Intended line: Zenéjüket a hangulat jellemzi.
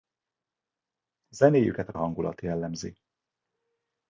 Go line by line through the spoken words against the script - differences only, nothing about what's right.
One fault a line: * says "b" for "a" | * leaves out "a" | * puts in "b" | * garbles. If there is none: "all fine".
all fine